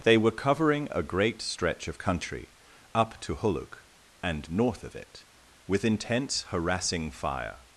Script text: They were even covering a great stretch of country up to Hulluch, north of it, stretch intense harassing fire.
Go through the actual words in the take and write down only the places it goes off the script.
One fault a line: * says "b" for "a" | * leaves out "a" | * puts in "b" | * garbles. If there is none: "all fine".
* leaves out "even"
* puts in "and"
* says "with" for "stretch"